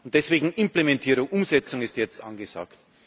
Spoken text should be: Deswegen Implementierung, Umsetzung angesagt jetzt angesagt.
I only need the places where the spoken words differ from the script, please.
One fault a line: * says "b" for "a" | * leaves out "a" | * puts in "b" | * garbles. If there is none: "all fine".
* says "ist" for "angesagt"